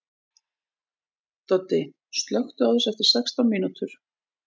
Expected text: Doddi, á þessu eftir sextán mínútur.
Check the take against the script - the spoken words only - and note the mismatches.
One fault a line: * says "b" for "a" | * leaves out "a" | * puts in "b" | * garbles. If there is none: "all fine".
* puts in "slökktu"